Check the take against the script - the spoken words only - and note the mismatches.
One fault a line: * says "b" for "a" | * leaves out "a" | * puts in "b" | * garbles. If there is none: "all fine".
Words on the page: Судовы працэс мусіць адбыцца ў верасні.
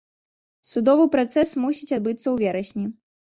all fine